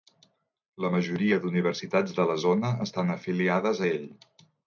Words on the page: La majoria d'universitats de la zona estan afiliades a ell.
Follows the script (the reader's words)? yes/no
yes